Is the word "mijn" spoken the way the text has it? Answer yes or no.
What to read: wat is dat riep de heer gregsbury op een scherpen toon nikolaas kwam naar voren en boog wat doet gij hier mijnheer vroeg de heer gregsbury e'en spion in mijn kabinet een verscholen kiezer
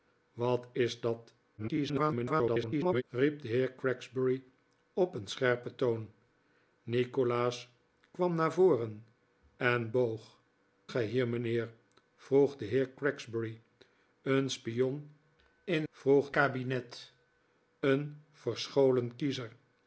no